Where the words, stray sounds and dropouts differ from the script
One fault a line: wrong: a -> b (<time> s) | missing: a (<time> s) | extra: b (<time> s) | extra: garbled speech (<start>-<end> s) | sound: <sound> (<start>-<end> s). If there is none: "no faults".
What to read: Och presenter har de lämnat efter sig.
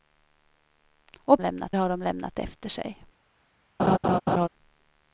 wrong: presenter -> lämnat (1.4 s)
sound: laugh (3.8-4.5 s)